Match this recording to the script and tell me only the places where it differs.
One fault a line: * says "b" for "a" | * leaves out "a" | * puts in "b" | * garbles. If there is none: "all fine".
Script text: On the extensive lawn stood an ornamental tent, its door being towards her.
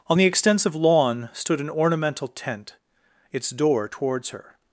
* leaves out "being"